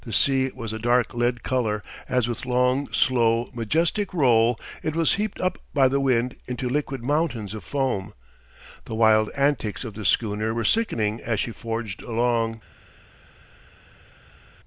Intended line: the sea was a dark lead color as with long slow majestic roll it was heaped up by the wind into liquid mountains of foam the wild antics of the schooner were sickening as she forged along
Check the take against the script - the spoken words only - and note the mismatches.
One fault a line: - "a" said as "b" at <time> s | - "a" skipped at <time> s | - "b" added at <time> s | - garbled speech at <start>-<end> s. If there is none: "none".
none